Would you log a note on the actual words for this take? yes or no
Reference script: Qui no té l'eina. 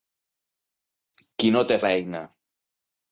no